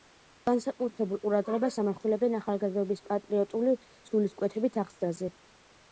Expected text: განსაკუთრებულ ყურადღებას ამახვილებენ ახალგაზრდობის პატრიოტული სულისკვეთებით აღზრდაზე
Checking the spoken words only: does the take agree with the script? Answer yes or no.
yes